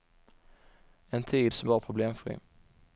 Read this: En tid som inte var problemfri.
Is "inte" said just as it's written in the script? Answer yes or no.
no